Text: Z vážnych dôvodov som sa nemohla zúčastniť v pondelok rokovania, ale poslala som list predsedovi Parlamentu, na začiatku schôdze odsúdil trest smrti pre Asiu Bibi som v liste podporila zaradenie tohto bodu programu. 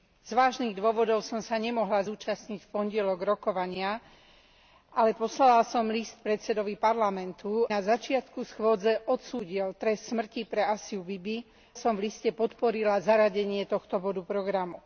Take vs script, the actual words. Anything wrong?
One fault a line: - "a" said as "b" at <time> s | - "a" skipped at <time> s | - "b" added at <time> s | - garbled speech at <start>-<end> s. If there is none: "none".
none